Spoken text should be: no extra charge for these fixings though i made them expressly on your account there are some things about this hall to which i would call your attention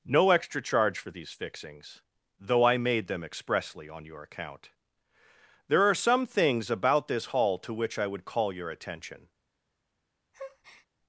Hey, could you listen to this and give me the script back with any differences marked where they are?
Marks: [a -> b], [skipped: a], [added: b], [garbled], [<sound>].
no extra charge for these fixings though i made them expressly on your account there are some things about this hall to which i would call your attention [breath]